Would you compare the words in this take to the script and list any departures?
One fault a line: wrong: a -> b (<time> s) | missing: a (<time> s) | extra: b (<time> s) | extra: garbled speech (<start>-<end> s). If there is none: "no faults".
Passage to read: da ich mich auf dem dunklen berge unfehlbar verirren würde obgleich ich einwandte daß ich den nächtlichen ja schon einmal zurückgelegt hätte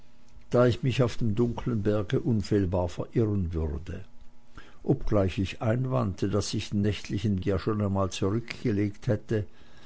no faults